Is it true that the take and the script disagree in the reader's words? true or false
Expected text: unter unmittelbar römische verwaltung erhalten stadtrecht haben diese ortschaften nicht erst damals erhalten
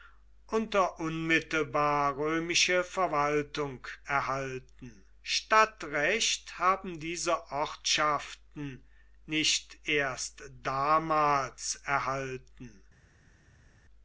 false